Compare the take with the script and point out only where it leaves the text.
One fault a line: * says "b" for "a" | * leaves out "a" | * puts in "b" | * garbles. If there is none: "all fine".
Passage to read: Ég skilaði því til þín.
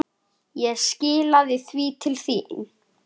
all fine